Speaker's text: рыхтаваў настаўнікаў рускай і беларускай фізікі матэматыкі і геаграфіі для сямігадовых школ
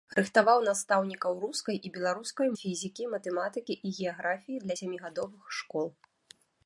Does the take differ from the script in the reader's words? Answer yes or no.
no